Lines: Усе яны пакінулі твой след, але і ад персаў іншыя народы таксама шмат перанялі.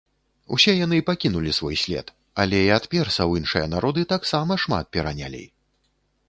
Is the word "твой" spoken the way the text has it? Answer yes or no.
no